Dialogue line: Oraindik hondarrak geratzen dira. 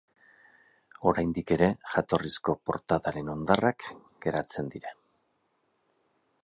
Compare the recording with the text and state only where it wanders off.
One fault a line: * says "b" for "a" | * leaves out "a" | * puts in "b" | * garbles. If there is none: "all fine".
* puts in "ere jatorrizko portadaren"